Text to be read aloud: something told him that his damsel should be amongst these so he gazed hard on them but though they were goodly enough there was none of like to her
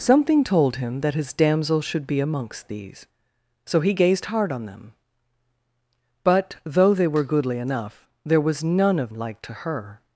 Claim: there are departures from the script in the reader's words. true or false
false